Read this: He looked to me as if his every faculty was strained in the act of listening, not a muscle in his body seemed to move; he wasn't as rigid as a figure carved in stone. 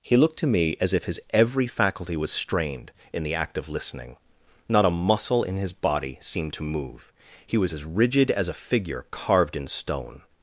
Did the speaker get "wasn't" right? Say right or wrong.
wrong